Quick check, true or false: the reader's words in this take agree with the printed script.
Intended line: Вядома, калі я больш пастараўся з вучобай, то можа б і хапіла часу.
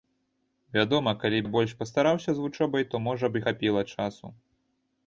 true